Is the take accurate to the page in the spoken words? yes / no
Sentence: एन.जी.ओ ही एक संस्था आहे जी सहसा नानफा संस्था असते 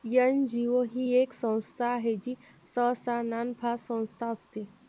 yes